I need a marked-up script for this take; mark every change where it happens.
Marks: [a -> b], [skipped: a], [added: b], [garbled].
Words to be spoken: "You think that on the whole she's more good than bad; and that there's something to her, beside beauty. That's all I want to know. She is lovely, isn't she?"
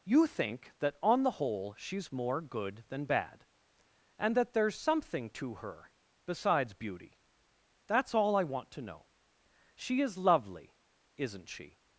"You think that on the whole she's more good than bad; and that there's something to her, [beside -> besides] beauty. That's all I want to know. She is lovely, isn't she?"